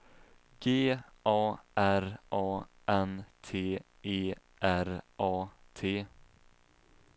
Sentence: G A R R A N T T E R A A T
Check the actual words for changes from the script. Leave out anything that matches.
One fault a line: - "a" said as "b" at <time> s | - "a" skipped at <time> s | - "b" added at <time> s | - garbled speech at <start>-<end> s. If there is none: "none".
- "R" skipped at 2.2 s
- "T" skipped at 3.8 s
- "A" skipped at 5.5 s